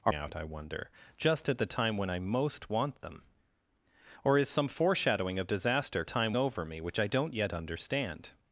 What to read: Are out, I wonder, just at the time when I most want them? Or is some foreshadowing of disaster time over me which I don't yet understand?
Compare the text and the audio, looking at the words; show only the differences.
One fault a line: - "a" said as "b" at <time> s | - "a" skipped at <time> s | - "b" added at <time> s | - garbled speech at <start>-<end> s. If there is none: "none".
none